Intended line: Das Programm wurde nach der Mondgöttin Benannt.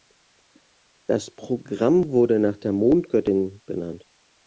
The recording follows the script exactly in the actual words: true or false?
true